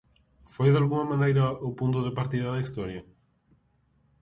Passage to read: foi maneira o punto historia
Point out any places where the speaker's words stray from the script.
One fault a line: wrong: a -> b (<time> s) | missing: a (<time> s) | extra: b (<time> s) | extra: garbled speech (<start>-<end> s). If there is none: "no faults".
extra: dalgunha (0.7 s)
extra: de partida da (2.1 s)